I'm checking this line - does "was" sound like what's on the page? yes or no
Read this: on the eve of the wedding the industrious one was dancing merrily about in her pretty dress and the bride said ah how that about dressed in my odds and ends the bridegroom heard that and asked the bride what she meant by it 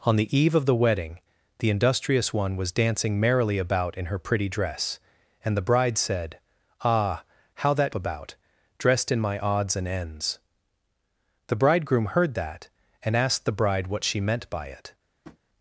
yes